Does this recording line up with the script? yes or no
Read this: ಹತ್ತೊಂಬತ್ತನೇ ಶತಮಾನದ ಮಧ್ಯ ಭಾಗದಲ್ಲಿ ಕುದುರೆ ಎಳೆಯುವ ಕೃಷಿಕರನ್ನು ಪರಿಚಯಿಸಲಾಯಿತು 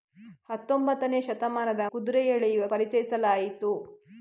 no